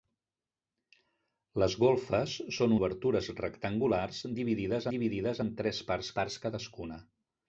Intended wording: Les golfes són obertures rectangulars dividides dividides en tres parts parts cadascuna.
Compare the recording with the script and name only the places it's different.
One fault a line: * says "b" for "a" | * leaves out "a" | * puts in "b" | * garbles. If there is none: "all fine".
all fine